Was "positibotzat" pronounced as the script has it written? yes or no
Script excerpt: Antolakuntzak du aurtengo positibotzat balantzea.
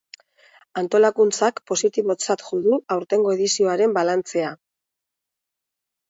no